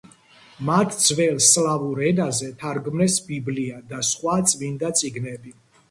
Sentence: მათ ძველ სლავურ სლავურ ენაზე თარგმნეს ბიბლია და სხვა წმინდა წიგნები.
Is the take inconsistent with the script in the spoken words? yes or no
yes